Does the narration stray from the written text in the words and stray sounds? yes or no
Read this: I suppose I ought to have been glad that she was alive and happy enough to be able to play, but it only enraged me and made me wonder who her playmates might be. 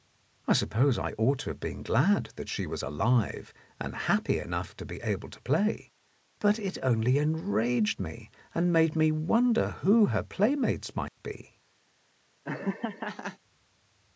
yes